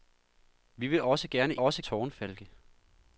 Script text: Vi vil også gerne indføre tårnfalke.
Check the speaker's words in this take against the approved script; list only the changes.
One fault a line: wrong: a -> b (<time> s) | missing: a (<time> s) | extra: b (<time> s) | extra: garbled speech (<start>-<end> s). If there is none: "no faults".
wrong: indføre -> også (1.6 s)